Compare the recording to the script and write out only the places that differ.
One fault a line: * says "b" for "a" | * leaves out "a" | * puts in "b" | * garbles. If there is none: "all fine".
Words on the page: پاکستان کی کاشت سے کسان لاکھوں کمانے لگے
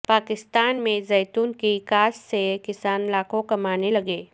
* puts in "میں زیتون"